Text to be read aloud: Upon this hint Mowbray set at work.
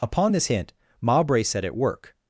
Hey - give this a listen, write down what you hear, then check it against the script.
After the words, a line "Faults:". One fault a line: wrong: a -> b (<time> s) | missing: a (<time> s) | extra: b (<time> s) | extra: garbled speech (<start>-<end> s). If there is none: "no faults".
Upon this hint Mowbray set at work.
Faults:
no faults